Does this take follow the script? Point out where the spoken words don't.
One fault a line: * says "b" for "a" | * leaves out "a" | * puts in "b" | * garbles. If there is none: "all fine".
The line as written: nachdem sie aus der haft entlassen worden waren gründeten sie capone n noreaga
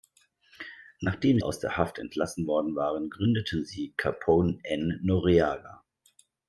* leaves out "sie"